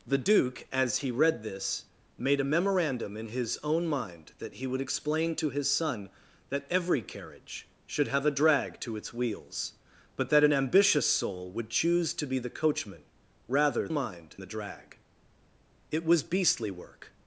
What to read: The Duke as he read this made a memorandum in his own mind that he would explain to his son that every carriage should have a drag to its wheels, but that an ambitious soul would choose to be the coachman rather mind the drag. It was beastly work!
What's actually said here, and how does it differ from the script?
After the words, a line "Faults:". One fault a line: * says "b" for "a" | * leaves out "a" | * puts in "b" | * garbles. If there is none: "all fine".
The Duke as he read this made a memorandum in his own mind that he would explain to his son that every carriage should have a drag to its wheels, but that an ambitious soul would choose to be the coachman rather mind the drag. It was beastly work!
Faults:
all fine